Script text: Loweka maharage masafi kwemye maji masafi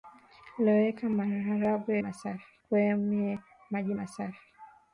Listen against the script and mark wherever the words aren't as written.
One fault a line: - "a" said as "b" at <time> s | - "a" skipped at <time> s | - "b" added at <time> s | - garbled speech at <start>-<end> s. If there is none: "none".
none